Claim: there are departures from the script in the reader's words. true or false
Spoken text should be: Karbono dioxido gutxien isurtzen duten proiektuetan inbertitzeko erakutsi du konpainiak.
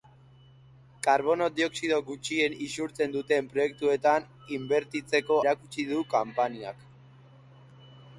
false